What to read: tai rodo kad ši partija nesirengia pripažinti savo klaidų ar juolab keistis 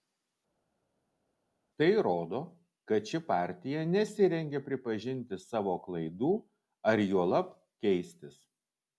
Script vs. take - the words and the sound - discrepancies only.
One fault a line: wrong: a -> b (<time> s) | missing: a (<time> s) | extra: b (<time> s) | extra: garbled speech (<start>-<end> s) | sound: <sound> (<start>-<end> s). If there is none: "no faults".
no faults